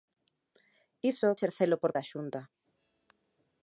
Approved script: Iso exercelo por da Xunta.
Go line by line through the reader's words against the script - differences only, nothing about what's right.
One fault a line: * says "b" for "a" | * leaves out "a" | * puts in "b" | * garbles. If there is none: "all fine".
all fine